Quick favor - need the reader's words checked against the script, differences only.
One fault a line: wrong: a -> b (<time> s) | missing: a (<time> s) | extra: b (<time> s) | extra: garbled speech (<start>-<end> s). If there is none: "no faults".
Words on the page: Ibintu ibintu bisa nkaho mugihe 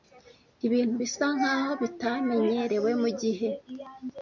missing: ibintu (0.9 s)
extra: bitamenyerewe (1.8 s)